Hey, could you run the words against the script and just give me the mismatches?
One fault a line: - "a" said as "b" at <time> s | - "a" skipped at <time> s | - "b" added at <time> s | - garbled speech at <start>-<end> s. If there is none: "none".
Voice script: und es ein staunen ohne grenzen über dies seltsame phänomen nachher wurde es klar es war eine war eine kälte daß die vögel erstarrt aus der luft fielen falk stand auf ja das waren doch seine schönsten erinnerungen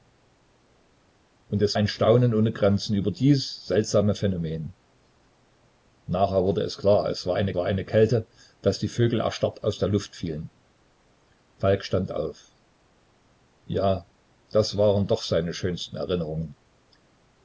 none